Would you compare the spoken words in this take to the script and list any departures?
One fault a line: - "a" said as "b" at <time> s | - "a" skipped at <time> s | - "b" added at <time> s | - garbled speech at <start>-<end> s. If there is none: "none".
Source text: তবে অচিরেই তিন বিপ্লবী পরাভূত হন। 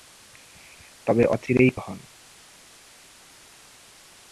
- "তিন বিপ্লবী পরাভূত" skipped at 1.7 s